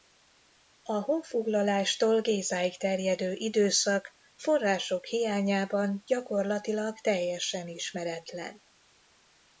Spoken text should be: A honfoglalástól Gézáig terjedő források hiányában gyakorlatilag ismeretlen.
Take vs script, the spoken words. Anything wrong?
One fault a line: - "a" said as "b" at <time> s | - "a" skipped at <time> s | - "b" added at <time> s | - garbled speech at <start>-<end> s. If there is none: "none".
- "időszak" added at 3.3 s
- "teljesen" added at 7.0 s